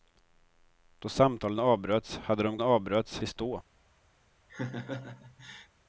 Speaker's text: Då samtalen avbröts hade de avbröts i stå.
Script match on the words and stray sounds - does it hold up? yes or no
no